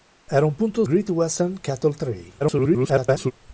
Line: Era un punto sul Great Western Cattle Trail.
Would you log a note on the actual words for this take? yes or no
yes